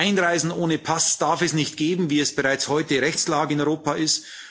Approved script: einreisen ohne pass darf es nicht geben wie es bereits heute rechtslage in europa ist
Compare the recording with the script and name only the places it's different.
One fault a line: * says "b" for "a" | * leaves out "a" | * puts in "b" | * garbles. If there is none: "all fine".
all fine